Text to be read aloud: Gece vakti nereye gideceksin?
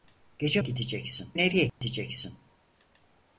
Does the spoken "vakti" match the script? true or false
false